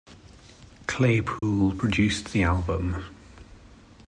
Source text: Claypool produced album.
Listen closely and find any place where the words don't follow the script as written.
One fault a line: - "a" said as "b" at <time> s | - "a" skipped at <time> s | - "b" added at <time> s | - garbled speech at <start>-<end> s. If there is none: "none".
- "the" added at 2.3 s